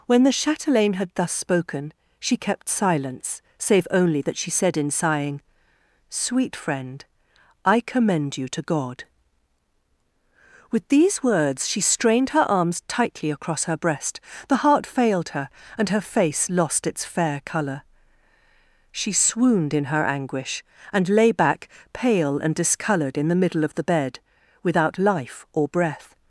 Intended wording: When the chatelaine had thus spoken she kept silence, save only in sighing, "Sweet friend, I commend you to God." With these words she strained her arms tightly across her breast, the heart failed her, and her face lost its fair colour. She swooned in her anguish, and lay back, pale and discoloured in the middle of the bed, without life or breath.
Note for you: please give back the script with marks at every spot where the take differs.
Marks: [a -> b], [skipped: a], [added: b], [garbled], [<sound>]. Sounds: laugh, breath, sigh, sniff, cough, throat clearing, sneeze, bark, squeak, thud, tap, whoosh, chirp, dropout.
When the chatelaine had thus spoken she kept silence, save only [added: that she said] in sighing, "Sweet friend, I commend you to God." With these words she strained her arms tightly across her breast, the heart failed her, and her face lost its fair colour. She swooned in her anguish, and lay back, pale and discoloured in the middle of the bed, without life or breath.